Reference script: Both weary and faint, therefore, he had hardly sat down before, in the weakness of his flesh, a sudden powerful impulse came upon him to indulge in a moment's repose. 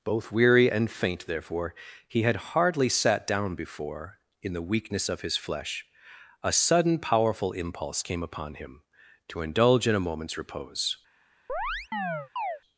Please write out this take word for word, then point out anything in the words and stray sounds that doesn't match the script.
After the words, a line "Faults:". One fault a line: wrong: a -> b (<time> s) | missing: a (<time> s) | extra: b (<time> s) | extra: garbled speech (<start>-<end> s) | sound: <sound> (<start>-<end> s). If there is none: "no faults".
Both weary and faint, therefore, he had hardly sat down before, in the weakness of his flesh, a sudden powerful impulse came upon him to indulge in a moment's repose.
Faults:
sound: chirp (11.5-12.6 s)